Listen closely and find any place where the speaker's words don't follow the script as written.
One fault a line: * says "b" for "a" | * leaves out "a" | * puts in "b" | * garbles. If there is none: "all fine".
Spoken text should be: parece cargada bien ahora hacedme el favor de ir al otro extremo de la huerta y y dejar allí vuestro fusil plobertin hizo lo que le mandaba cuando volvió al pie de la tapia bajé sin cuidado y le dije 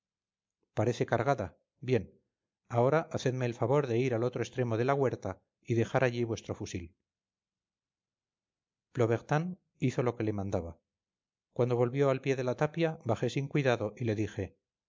* leaves out "y"